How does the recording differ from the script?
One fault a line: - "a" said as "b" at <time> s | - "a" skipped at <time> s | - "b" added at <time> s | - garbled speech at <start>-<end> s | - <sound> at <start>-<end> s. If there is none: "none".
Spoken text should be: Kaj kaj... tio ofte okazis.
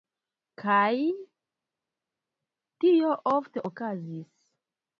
- "kaj" skipped at 0.9 s